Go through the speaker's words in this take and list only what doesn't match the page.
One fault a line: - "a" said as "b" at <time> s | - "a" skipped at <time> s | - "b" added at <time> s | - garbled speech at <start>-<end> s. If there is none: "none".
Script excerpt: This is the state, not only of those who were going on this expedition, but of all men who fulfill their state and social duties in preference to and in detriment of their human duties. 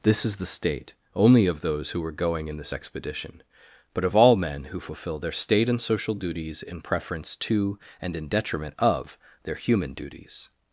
- "not" skipped at 0.9 s
- "on" said as "in" at 2.5 s